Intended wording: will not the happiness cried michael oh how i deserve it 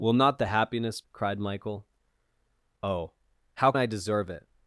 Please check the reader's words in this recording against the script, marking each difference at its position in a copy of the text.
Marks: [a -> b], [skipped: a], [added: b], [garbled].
will not the happiness cried michael oh how i deserve it